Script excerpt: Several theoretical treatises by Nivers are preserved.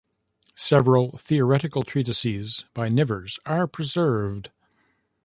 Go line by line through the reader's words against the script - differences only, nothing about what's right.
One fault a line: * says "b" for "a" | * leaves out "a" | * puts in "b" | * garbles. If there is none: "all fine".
all fine